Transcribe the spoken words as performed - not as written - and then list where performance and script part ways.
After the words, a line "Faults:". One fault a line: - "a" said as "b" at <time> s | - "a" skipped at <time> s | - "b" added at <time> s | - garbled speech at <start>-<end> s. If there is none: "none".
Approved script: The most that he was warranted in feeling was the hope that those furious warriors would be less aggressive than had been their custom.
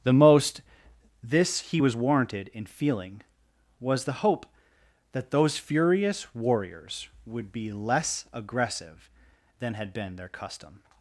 The most this he was warranted in feeling was the hope that those furious warriors would be less aggressive than had been their custom.
Faults:
- "that" said as "this" at 1.2 s